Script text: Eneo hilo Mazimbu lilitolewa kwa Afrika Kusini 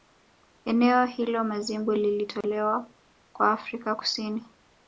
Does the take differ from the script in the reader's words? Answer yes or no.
no